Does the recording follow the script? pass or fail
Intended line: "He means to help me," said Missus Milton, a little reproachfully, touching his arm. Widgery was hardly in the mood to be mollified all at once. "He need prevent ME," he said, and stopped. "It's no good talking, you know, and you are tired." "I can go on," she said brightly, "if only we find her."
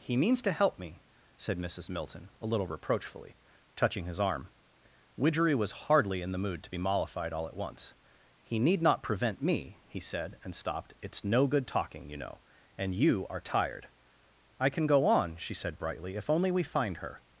fail